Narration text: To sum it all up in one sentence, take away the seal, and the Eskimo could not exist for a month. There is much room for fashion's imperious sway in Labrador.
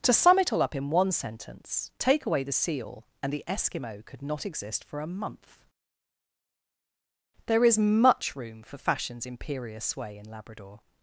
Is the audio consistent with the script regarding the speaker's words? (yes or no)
yes